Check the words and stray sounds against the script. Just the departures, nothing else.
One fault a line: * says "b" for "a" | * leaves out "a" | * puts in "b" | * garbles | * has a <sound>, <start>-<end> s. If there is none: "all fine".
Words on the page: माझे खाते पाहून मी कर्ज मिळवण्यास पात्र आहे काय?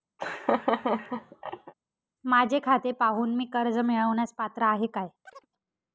* has a laugh, 0.2-1.7 s
* has a chirp, 5.3-5.5 s